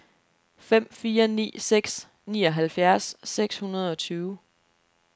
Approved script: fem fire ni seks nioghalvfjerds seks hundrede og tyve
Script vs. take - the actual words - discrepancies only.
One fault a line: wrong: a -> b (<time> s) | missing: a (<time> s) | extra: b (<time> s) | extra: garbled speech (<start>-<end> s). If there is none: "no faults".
no faults